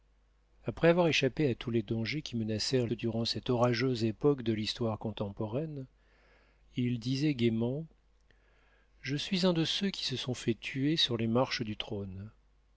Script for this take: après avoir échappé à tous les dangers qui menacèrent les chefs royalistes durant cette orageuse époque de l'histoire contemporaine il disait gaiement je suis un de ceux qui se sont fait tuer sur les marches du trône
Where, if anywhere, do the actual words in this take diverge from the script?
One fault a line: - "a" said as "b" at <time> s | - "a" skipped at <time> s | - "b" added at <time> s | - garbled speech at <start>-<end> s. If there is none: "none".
- "les chefs royalistes" skipped at 2.9 s